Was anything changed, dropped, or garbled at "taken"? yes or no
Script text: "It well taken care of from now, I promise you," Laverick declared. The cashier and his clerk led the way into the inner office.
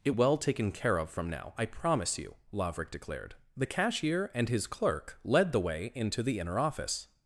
no